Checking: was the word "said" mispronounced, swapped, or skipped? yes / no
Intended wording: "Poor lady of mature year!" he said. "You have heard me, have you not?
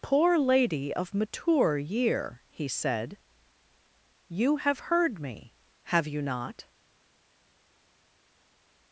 no